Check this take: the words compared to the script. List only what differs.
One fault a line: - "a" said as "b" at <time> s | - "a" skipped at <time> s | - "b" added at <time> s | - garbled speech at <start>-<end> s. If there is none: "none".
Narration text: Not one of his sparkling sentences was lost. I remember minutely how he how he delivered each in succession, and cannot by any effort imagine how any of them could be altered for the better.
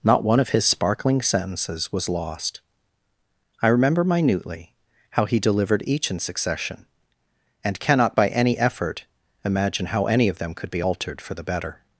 - "how he" skipped at 5.4 s